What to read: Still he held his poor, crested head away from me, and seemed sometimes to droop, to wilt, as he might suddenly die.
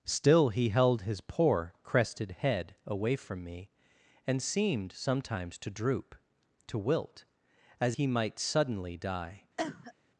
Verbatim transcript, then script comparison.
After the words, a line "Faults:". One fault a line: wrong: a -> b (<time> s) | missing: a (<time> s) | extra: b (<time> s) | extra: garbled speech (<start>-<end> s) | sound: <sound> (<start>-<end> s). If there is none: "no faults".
Still he held his poor, crested head away from me, and seemed sometimes to droop, to wilt, as he might suddenly die.
Faults:
sound: cough (9.6-9.9 s)